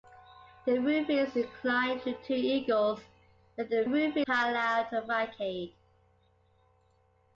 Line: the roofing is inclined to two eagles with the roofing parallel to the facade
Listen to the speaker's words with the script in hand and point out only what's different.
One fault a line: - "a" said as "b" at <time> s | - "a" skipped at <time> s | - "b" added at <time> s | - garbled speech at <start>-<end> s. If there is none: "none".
none